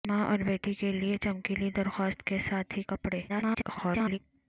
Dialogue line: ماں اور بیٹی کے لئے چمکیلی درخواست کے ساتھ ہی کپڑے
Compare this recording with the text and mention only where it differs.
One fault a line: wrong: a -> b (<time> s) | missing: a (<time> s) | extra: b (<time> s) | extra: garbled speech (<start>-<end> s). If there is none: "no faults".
extra: garbled speech (3.3-4.2 s)